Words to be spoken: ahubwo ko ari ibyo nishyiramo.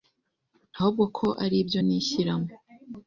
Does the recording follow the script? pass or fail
pass